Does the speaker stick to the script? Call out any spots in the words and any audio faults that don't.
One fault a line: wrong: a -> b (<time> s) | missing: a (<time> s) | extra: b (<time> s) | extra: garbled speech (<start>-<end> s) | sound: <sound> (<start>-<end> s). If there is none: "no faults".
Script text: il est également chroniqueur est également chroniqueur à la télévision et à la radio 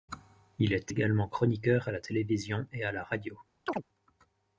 missing: est également chroniqueur (1.9 s)
sound: chirp (3.7-3.8 s)